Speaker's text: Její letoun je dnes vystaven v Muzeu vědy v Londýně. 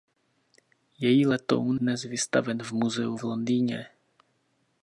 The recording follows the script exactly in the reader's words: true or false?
false